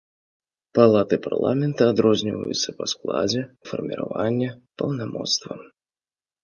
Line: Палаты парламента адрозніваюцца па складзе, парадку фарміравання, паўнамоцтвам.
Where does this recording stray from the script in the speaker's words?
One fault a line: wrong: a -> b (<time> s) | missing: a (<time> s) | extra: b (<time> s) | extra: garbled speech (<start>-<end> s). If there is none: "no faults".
missing: парадку (3.4 s)